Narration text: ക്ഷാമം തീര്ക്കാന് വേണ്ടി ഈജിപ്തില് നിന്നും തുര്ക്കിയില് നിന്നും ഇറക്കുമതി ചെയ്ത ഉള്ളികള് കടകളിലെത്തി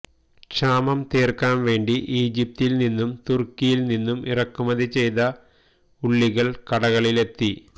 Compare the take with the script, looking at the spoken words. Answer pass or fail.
pass